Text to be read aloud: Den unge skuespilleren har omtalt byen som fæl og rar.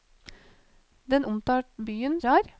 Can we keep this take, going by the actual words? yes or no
no